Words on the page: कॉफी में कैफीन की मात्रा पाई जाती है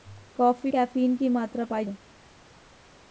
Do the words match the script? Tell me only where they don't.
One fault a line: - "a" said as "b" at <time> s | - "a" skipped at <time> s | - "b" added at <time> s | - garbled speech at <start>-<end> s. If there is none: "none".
- "में" skipped at 0.7 s
- "जाती" skipped at 1.9 s